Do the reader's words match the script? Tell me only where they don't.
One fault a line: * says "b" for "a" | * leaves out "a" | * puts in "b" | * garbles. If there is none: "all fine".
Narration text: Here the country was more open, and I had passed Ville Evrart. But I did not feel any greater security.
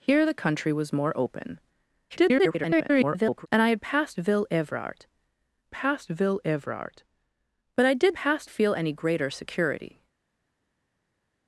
* garbles
* puts in "passed Ville Evrart"
* says "passed" for "not"